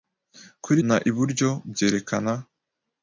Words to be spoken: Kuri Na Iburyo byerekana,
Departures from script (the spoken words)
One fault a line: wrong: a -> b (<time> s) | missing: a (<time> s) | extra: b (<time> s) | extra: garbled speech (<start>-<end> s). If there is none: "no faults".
no faults